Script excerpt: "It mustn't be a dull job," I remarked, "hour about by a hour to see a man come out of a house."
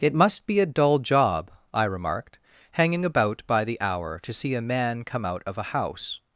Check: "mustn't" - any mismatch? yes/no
yes